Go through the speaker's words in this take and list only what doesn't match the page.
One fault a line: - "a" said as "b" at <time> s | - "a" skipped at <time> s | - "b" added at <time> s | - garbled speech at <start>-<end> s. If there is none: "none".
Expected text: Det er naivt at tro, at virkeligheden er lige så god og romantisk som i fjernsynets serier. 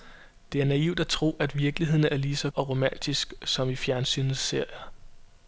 - "god" skipped at 2.5 s